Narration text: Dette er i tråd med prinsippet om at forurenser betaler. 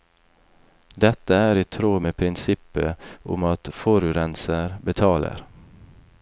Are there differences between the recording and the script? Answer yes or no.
no